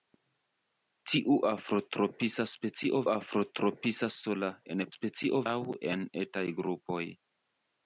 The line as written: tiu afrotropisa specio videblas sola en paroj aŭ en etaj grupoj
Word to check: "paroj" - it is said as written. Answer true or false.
false